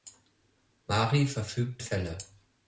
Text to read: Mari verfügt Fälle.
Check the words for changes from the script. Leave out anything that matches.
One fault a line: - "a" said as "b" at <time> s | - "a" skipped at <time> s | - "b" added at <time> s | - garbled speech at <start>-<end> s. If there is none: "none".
none